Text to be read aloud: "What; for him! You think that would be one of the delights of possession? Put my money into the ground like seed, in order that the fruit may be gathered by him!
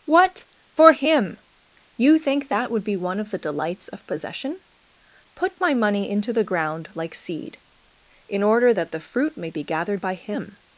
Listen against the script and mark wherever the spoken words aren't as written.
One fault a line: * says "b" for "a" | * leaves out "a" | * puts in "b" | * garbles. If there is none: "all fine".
all fine